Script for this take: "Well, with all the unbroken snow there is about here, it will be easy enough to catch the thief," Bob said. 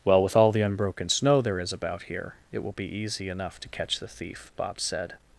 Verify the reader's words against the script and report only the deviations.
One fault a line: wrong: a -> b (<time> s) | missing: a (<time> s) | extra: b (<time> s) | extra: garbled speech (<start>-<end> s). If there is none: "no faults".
no faults